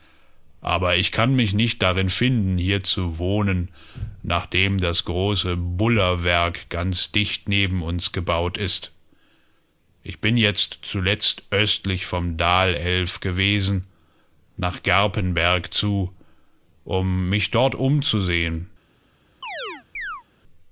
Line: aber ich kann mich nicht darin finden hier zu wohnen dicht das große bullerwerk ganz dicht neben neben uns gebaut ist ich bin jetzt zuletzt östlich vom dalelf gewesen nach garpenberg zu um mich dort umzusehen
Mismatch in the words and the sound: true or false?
true